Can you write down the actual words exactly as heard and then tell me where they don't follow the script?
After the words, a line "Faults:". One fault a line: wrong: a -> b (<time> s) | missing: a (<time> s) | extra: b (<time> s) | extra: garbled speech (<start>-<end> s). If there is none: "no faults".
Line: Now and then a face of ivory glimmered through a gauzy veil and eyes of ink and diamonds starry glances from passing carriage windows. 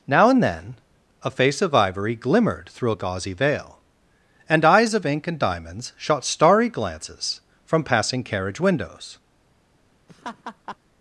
Now and then a face of ivory glimmered through a gauzy veil and eyes of ink and diamonds shot starry glances from passing carriage windows.
Faults:
extra: shot (5.9 s)